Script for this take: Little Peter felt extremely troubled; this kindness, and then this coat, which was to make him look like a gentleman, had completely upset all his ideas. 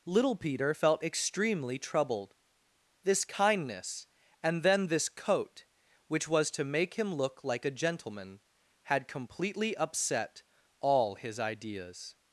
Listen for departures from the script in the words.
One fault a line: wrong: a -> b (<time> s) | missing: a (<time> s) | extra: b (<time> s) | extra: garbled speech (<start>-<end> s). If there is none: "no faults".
no faults